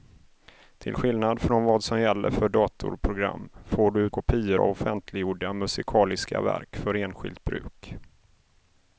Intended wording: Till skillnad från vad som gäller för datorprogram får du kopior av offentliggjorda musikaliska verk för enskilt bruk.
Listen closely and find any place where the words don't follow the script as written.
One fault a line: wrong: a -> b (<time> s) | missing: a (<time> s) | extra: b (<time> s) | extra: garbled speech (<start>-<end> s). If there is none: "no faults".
no faults